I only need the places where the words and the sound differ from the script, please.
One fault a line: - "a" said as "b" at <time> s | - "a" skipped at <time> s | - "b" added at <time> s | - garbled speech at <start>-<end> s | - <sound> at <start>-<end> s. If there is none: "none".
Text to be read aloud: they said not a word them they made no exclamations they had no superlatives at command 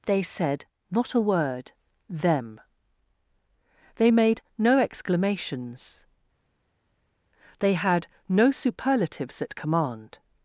none